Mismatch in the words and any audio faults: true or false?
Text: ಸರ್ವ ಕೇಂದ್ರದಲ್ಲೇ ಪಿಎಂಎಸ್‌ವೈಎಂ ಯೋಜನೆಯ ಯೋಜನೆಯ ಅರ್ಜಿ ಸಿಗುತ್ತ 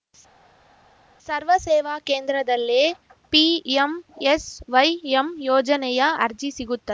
true